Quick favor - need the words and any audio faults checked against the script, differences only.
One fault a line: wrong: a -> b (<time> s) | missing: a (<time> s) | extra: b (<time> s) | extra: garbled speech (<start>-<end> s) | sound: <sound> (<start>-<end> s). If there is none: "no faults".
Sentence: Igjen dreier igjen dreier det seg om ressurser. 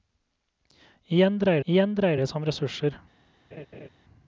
sound: laugh (3.5-3.9 s)